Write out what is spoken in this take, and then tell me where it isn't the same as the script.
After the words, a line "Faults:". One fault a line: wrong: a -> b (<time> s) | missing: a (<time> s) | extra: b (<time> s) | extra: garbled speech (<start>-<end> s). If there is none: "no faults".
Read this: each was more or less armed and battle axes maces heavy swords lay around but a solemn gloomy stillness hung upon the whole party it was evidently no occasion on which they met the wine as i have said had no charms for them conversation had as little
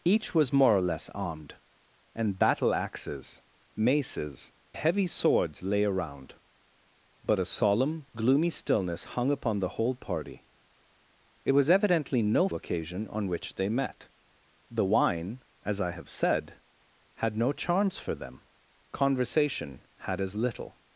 each was more or less armed and battle axes maces heavy swords lay around but a solemn gloomy stillness hung upon the whole party it was evidently no occasion on which they met the wine as i have said had no charms for them conversation had as little
Faults:
no faults